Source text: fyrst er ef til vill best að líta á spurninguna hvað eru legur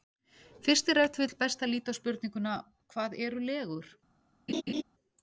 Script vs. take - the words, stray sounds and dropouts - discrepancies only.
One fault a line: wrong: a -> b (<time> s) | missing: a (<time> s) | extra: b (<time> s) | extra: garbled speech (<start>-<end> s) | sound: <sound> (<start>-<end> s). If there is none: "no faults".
sound: laugh (4.5-4.8 s)